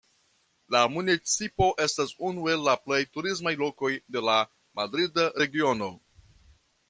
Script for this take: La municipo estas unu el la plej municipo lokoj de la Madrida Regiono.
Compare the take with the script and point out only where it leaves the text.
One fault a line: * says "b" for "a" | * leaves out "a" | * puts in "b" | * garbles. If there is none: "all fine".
* says "turismaj" for "municipo"